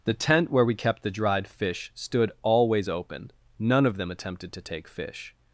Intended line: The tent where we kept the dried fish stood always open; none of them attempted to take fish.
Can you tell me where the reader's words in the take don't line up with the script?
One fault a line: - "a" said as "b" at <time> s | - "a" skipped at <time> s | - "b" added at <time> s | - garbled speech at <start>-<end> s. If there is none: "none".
none